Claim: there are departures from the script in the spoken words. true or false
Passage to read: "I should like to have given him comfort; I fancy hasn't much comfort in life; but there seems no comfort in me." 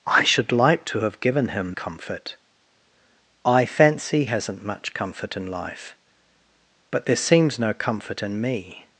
false